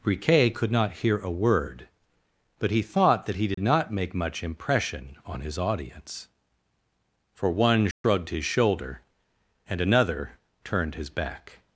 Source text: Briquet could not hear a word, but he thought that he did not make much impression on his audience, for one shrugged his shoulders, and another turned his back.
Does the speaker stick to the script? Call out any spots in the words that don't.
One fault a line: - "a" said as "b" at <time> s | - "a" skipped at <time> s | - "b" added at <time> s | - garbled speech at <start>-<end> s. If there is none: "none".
- "shoulders" said as "shoulder" at 8.4 s